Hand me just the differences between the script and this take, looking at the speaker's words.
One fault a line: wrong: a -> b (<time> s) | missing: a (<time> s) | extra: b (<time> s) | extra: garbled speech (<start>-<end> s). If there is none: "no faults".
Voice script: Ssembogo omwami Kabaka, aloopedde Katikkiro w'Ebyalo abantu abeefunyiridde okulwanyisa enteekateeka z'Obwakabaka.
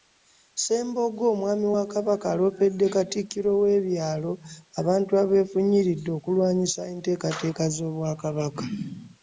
extra: wa (1.7 s)